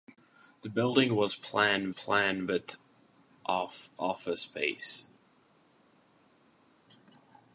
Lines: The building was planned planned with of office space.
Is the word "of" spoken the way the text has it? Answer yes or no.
yes